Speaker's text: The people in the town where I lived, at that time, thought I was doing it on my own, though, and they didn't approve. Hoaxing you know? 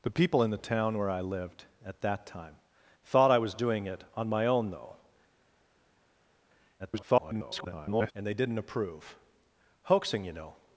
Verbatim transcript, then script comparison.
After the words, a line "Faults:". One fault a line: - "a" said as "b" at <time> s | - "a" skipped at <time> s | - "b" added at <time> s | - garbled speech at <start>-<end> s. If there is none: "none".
The people in the town where I lived, at that time, thought I was doing it on my own, though, [garbled] and they didn't approve. Hoaxing you know?
Faults:
- garbled speech at 6.8-8.1 s